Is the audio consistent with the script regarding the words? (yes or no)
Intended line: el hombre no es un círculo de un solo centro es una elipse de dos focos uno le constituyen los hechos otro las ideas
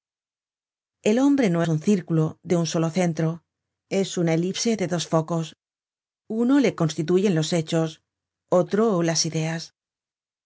no